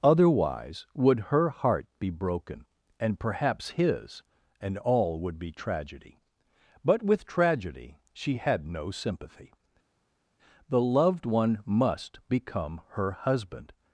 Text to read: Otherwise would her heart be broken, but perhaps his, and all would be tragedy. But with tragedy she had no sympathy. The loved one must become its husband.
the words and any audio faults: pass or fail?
fail